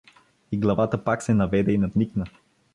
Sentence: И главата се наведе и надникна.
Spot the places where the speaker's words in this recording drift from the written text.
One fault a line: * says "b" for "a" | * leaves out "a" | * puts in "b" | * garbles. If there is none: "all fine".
* puts in "пак"